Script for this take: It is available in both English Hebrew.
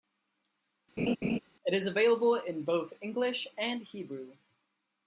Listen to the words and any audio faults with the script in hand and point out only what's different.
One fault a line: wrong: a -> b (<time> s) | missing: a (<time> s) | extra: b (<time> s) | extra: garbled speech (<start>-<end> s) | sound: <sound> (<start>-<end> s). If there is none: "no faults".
sound: laugh (1.0-1.4 s)
extra: and (3.6 s)